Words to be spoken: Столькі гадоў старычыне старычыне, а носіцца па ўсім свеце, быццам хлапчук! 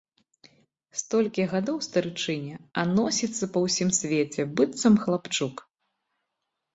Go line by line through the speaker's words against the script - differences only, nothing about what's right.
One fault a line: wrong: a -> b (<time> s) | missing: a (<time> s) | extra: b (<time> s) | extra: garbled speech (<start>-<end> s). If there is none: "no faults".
missing: старычыне (2.5 s)